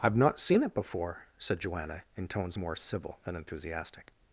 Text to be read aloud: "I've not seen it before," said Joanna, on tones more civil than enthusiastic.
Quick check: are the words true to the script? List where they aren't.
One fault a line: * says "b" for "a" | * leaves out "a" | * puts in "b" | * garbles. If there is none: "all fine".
* says "in" for "on"